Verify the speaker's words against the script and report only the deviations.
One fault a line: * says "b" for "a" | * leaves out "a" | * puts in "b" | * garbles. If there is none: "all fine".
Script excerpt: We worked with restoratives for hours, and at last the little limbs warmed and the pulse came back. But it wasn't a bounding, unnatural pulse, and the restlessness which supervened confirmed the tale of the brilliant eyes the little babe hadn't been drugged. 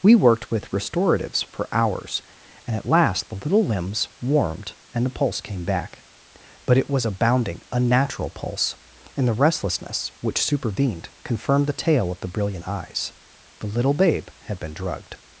* says "was" for "wasn't"
* says "had" for "hadn't"